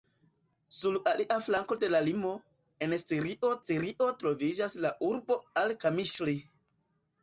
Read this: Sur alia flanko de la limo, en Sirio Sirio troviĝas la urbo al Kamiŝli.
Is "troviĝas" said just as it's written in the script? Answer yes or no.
yes